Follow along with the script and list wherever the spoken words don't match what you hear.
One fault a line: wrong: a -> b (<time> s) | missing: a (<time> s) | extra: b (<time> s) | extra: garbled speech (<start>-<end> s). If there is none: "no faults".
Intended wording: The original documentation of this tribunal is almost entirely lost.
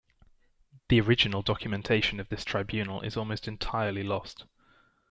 no faults